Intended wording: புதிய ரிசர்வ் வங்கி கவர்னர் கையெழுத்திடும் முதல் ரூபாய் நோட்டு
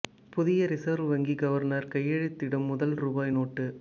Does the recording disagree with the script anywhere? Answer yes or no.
no